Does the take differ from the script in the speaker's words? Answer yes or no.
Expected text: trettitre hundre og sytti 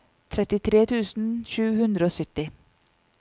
yes